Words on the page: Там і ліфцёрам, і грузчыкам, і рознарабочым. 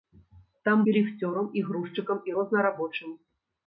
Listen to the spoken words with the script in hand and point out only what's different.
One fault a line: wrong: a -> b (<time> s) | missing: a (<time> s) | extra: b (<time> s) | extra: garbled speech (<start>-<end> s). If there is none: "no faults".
no faults